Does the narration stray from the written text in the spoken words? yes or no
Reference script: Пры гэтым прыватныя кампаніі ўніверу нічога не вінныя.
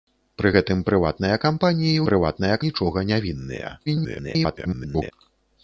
yes